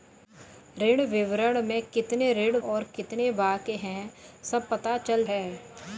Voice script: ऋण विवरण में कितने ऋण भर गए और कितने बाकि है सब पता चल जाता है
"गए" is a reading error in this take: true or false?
true